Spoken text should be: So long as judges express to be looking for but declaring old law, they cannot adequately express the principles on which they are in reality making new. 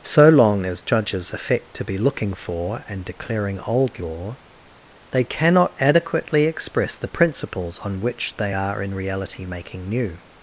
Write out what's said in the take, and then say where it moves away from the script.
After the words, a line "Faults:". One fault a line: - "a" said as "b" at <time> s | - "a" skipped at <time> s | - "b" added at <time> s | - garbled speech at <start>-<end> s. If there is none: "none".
So long as judges affect to be looking for and declaring old law, they cannot adequately express the principles on which they are in reality making new.
Faults:
- "express" said as "affect" at 1.3 s
- "but" said as "and" at 2.9 s